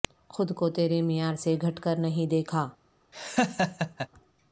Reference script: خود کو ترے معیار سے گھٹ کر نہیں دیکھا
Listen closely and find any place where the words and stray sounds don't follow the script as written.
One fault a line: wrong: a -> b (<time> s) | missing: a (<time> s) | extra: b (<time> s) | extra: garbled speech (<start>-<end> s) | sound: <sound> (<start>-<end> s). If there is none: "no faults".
sound: laugh (3.1-4.1 s)